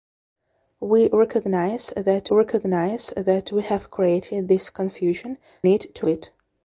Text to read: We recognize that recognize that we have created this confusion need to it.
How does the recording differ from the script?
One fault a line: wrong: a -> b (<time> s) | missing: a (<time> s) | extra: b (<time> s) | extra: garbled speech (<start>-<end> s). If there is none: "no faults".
no faults